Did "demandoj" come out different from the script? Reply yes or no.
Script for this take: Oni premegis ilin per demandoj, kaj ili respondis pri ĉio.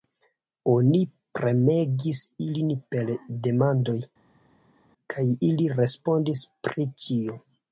no